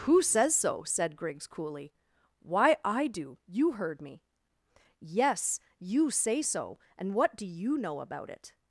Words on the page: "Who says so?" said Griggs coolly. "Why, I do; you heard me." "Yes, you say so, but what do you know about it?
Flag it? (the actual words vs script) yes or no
yes